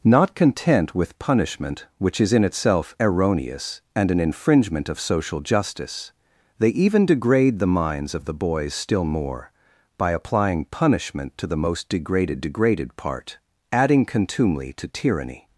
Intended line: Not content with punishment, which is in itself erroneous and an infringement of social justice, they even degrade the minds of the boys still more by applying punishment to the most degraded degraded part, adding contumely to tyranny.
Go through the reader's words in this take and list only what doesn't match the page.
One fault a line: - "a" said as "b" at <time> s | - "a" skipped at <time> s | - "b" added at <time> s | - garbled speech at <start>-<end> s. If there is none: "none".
none